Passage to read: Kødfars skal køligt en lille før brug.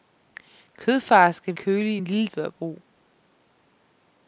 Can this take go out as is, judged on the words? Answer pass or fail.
pass